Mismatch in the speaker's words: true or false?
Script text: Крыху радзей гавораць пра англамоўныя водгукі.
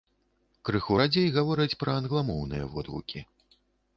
false